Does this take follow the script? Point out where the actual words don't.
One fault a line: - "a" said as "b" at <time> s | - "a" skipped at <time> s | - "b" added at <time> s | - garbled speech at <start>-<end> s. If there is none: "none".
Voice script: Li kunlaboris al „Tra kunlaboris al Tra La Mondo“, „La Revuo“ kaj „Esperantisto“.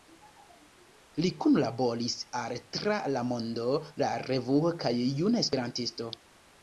- "kunlaboris al Tra" skipped at 3.0 s
- "Juna" added at 5.2 s